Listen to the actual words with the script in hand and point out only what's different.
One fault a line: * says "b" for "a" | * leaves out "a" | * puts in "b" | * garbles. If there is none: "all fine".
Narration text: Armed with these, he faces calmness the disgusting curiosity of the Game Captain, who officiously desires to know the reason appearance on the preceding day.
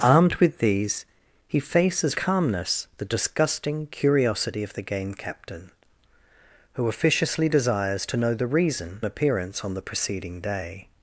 all fine